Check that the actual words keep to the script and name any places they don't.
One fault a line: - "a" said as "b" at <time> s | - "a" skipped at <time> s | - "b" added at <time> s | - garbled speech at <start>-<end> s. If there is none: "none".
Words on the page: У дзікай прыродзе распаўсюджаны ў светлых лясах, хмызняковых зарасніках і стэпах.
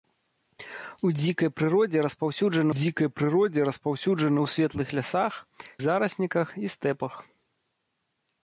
- "дзікай прыродзе распаўсюджаны" added at 2.8 s
- "хмызняковых" skipped at 5.3 s